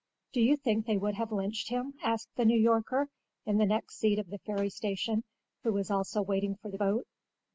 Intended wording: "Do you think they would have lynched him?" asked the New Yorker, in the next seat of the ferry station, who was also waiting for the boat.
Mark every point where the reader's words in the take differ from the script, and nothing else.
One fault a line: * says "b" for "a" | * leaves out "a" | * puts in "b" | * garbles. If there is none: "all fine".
all fine